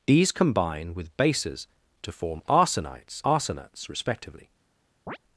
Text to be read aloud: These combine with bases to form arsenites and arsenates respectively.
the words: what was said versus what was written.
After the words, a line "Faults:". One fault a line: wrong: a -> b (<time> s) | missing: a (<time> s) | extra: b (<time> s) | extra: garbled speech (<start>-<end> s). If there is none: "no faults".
These combine with bases to form arsenites arsenates respectively.
Faults:
missing: and (3.2 s)